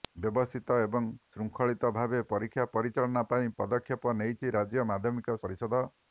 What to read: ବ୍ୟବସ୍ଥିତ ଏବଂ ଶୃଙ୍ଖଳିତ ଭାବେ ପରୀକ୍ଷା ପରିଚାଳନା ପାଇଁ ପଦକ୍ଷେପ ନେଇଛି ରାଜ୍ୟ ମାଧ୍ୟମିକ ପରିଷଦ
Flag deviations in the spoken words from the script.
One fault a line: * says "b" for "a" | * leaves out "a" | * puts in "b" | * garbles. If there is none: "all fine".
all fine